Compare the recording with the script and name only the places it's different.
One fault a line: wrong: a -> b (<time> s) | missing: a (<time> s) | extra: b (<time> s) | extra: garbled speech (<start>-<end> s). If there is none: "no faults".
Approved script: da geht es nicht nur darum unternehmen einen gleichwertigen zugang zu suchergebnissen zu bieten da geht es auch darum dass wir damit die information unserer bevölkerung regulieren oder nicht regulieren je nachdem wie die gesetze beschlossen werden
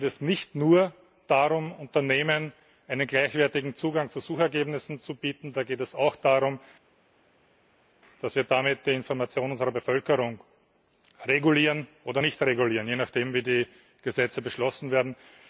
no faults